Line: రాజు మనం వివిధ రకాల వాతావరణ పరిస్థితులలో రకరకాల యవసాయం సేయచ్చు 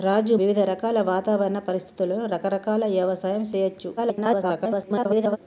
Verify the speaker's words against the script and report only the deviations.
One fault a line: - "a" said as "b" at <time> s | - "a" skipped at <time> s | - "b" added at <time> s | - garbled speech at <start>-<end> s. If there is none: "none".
- "మనం" skipped at 0.3 s
- garbled speech at 4.0-5.4 s